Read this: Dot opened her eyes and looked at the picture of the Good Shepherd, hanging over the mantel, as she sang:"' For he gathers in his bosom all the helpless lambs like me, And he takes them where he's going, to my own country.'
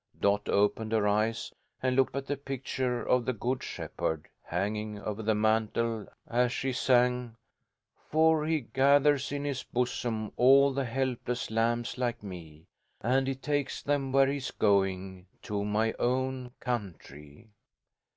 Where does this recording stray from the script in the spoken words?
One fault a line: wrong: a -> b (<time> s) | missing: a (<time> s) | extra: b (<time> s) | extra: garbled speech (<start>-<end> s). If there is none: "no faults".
no faults